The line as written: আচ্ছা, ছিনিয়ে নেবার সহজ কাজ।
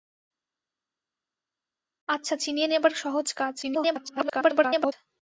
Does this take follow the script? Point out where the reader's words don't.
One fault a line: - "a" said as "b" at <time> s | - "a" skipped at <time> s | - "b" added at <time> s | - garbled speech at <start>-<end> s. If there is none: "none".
- garbled speech at 3.6-4.9 s